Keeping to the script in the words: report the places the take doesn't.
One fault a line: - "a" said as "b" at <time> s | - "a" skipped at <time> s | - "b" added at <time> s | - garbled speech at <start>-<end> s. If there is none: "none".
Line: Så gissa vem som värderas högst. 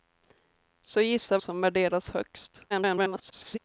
- "vem" skipped at 1.4 s
- garbled speech at 2.7-3.6 s